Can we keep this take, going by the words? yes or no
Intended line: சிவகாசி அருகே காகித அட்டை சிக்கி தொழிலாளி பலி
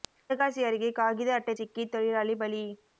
yes